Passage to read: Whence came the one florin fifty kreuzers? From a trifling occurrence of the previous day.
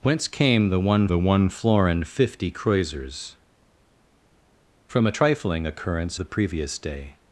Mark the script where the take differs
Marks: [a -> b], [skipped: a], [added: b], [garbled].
Whence came the one [added: the one] florin fifty kreuzers? From a trifling occurrence [skipped: of] the previous day.